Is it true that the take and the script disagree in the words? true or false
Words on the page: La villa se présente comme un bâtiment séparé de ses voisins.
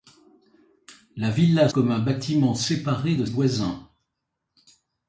true